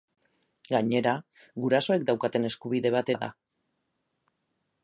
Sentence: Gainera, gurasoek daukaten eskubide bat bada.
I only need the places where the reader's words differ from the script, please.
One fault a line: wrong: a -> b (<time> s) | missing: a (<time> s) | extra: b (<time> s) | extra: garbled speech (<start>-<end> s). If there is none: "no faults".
no faults